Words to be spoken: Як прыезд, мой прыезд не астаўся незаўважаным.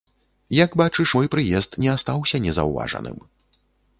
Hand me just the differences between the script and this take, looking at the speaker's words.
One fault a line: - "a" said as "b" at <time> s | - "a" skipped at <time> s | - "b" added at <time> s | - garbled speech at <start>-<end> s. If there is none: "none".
- "прыезд" said as "бачыш" at 0.8 s